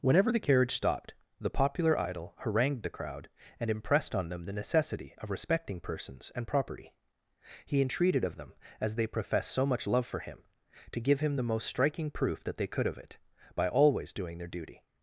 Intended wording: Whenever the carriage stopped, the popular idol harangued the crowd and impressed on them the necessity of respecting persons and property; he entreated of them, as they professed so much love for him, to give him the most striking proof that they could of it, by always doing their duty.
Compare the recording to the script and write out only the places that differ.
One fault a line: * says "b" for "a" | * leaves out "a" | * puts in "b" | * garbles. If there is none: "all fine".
all fine